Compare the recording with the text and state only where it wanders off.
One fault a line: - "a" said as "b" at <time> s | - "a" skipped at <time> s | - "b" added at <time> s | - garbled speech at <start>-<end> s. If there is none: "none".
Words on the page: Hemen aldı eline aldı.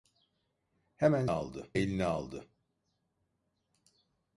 none